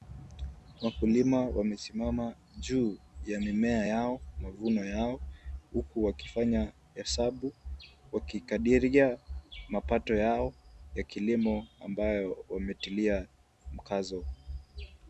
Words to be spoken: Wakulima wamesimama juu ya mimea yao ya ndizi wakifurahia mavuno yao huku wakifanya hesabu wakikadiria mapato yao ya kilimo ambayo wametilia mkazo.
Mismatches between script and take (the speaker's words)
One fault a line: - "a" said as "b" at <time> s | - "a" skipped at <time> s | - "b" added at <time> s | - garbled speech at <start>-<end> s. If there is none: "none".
- "ya ndizi wakifurahia" skipped at 4.2 s